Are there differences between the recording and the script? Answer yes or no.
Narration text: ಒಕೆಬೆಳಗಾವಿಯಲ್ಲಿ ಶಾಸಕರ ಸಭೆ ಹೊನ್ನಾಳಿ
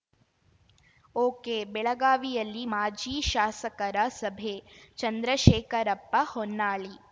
yes